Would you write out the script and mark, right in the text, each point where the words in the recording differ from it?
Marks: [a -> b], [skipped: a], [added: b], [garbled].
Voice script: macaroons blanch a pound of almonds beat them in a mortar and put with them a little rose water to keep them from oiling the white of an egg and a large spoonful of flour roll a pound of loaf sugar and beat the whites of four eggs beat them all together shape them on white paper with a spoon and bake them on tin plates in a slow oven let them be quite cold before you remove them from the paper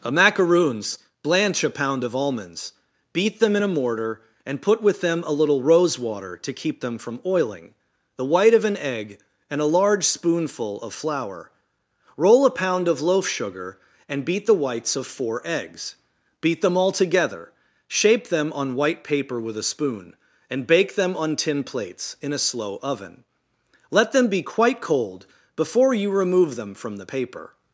[added: a] macaroons blanch a pound of almonds beat them in a mortar and put with them a little rose water to keep them from oiling the white of an egg and a large spoonful of flour roll a pound of loaf sugar and beat the whites of four eggs beat them all together shape them on white paper with a spoon and bake them on tin plates in a slow oven let them be quite cold before you remove them from the paper